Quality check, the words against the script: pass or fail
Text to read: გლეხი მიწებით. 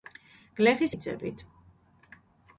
pass